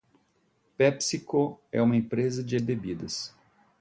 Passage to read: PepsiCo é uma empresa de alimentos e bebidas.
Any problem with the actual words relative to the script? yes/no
yes